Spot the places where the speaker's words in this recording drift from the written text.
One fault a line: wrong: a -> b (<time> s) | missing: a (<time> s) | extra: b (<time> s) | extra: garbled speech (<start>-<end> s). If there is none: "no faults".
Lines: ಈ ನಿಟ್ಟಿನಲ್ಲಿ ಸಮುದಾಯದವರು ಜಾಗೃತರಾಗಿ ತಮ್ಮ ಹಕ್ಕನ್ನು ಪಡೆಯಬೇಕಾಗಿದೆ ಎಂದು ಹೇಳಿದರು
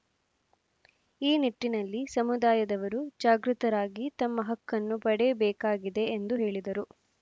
no faults